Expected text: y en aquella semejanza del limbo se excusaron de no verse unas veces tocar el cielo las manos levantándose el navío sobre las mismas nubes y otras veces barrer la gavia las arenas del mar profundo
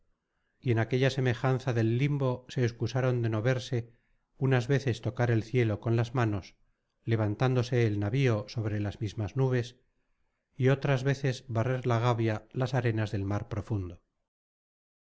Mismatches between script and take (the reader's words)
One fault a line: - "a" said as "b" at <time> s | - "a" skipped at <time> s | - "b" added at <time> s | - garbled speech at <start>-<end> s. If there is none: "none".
- "con" added at 5.8 s